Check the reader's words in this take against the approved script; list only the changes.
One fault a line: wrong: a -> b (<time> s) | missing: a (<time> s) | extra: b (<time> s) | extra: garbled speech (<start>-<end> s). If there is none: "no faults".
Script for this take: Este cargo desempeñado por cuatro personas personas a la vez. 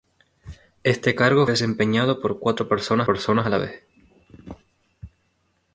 no faults